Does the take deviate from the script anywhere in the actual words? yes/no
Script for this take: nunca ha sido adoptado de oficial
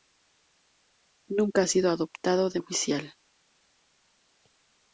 no